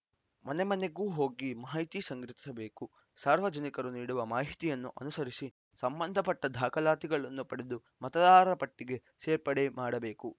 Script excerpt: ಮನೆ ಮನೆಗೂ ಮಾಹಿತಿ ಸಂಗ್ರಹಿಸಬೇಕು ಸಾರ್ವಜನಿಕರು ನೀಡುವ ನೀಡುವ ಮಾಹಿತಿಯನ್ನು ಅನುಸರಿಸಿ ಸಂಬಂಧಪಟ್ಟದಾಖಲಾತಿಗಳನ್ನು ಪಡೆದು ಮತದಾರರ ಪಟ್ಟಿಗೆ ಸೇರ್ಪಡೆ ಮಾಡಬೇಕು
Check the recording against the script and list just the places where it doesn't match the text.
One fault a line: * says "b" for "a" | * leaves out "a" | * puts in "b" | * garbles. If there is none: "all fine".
* puts in "ಹೋಗಿ"
* leaves out "ನೀಡುವ"